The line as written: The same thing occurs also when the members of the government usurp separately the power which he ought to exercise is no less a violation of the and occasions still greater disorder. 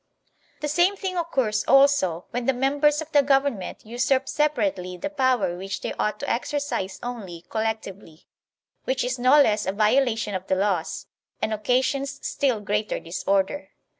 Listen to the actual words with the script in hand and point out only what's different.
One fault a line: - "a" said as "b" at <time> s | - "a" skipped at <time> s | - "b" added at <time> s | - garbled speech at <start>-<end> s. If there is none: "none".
- "he" said as "they" at 5.8 s
- "only collectively which" added at 7.0 s
- "laws" added at 10.6 s